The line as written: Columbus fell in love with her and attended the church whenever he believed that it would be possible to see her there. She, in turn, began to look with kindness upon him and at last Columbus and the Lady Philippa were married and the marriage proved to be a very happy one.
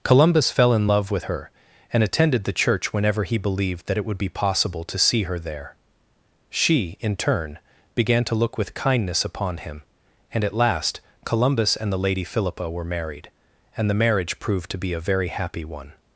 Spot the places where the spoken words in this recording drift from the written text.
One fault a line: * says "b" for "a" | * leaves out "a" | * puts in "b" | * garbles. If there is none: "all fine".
all fine